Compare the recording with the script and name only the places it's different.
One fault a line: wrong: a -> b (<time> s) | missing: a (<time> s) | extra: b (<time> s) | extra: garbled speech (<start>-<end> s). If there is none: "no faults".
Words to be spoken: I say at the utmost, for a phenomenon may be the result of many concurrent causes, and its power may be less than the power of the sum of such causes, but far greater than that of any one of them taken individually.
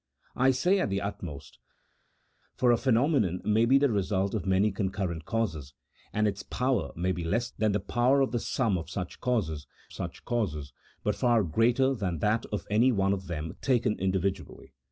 extra: such causes (9.9 s)